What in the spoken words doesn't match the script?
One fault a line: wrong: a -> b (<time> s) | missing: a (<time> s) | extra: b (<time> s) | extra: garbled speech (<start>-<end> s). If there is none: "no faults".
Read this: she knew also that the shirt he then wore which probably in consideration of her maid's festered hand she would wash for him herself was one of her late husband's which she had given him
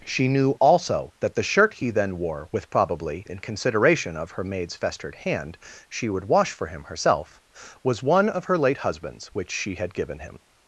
wrong: which -> with (2.5 s)